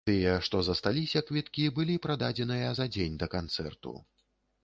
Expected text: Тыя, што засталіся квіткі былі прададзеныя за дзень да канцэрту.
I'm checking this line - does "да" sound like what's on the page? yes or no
yes